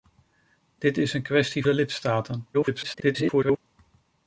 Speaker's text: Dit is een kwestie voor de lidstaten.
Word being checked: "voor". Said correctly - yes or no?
no